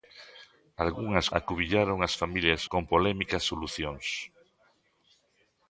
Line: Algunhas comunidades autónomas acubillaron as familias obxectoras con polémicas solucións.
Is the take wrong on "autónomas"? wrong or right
wrong